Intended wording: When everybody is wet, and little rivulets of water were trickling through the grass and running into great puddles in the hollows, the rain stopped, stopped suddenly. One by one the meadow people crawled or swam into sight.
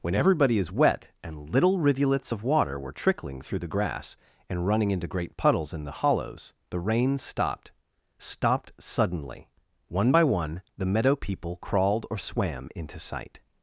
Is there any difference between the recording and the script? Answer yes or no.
no